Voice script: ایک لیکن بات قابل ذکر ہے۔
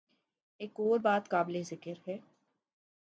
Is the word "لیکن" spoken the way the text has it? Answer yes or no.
no